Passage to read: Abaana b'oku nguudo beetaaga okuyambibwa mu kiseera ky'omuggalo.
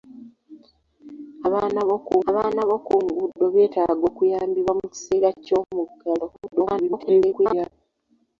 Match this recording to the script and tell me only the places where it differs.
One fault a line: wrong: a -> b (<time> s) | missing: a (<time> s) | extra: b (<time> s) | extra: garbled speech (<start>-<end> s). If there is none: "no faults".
extra: abaana b'oku (2.3 s)
extra: garbled speech (6.3-7.7 s)